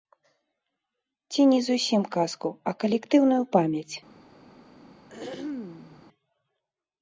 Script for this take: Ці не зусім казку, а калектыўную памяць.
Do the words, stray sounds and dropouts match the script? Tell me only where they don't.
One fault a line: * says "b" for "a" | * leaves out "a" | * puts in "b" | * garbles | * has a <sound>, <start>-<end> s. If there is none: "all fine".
* has a throat clearing, 5.1-6.1 s